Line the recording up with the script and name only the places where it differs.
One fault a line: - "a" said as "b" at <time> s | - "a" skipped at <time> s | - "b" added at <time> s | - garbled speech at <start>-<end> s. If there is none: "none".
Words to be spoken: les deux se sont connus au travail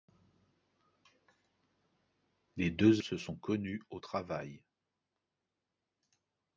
none